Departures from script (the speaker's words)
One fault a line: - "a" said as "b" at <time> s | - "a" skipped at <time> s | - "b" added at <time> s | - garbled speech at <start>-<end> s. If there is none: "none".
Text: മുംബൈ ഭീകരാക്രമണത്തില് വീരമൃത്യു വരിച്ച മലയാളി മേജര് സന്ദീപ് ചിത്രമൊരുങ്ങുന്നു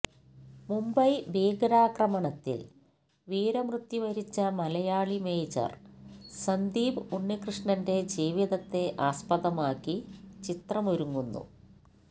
- "ഉണ്ണികൃഷ്ണന്റെ ജീവിതത്തെ ആസ്പദമാക്കി" added at 7.2 s